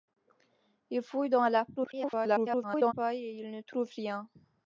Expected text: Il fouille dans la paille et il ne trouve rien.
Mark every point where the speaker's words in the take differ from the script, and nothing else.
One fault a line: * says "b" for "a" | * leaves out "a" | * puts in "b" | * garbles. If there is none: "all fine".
* garbles